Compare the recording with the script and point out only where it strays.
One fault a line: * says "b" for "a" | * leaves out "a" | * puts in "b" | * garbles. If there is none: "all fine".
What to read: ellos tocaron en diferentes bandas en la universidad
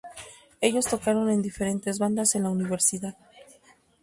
all fine